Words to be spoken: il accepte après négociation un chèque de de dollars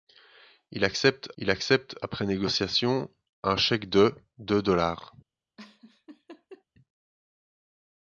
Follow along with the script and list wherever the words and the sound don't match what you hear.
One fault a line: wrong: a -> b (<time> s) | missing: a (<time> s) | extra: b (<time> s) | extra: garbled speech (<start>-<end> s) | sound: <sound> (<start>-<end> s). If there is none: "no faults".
extra: il accepte (1.4 s)
sound: laugh (5.6-6.6 s)